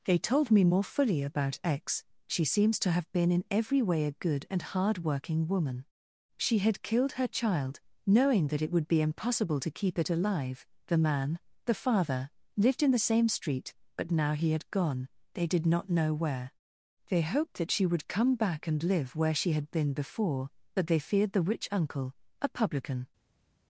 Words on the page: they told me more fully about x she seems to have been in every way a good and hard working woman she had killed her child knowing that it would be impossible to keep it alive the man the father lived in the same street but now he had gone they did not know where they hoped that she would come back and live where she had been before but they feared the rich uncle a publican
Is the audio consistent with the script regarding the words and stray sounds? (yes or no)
yes